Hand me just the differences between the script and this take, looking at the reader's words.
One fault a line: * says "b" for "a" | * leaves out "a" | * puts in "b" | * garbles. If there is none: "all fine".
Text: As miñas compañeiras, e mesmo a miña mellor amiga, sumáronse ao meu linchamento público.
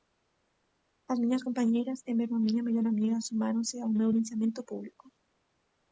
all fine